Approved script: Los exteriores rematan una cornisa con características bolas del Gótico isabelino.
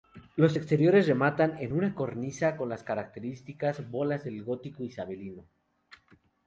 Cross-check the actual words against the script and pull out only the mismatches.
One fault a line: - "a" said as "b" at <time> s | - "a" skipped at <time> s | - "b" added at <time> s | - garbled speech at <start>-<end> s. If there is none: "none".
- "en" added at 1.6 s
- "las" added at 2.7 s